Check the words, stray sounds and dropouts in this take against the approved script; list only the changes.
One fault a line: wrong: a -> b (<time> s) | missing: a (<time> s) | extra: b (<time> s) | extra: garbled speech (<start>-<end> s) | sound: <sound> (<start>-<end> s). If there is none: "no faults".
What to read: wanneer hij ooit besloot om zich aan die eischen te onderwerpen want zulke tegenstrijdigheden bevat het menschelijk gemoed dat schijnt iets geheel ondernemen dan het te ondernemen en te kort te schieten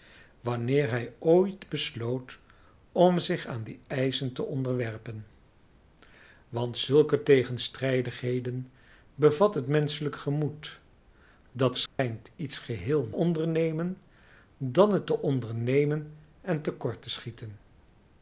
sound: dropout (11.9-12.0 s)